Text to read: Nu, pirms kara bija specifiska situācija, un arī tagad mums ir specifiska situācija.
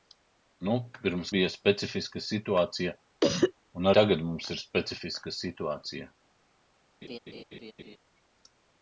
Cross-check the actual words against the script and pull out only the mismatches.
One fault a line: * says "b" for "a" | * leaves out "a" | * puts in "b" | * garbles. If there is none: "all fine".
* leaves out "kara"
* leaves out "arī"